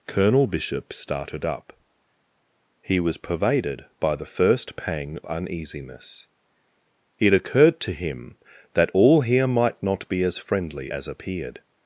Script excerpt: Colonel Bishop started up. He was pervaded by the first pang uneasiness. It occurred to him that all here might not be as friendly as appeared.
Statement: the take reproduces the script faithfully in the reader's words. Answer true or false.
true